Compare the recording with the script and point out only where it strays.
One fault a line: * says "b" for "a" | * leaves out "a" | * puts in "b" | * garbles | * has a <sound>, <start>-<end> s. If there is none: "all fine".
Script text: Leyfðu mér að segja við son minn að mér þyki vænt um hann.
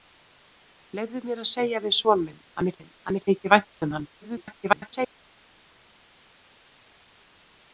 * puts in "minn að mér"
* garbles